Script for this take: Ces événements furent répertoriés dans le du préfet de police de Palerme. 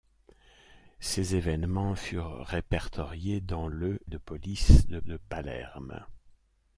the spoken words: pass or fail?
fail